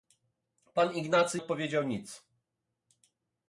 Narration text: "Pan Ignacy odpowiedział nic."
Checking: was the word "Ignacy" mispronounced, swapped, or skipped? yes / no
no